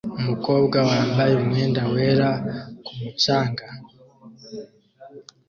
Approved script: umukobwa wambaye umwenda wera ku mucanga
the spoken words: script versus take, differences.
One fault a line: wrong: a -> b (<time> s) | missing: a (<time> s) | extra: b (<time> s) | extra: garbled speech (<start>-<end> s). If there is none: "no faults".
no faults